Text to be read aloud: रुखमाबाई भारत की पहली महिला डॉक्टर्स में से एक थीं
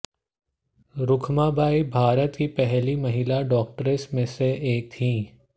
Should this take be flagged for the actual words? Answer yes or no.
no